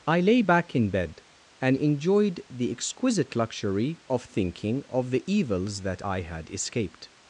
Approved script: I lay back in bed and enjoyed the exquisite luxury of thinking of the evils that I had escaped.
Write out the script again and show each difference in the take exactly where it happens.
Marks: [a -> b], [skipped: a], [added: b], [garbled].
I lay back in bed and enjoyed the exquisite luxury of thinking of the evils that I had escaped.